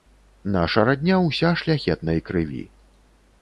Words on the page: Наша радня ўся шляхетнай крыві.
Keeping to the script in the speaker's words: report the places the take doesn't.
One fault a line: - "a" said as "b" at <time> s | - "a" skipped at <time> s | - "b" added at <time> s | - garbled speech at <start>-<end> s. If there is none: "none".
none